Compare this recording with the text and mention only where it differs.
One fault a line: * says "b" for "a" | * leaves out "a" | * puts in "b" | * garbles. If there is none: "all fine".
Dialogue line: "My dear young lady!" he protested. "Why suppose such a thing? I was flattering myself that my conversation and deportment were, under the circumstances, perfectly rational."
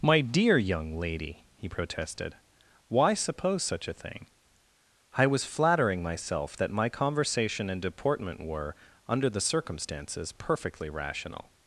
all fine